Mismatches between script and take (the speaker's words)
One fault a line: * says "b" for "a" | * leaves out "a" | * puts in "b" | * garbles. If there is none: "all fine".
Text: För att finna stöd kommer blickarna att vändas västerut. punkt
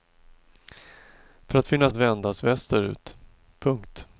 * leaves out "stöd kommer blickarna"